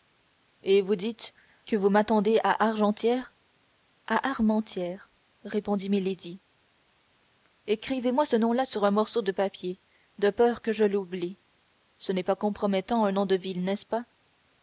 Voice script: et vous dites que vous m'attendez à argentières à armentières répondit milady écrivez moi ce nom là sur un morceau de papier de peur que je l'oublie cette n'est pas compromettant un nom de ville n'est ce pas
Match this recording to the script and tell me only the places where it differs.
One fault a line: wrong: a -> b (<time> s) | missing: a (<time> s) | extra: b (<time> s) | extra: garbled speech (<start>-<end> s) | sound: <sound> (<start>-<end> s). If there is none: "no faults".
wrong: cette -> ce (12.0 s)